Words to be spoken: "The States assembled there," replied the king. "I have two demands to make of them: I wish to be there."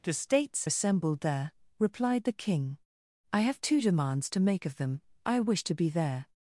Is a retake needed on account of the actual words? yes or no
no